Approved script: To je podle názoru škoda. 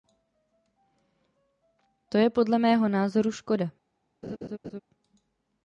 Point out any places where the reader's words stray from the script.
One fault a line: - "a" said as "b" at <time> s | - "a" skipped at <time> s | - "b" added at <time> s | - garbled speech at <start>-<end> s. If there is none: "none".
- "mého" added at 2.6 s